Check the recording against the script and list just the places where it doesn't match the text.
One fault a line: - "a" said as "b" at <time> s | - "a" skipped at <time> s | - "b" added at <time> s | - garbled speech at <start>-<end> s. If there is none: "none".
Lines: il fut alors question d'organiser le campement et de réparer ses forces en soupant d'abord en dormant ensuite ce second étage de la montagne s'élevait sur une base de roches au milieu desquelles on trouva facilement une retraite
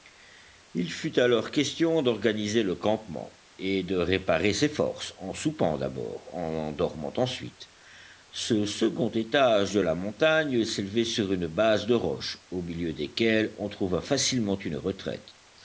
none